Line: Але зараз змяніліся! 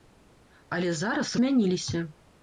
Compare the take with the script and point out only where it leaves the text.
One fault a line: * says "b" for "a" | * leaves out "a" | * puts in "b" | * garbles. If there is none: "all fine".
all fine